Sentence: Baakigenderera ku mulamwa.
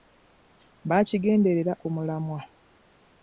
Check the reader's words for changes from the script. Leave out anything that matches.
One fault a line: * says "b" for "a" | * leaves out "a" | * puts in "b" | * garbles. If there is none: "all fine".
all fine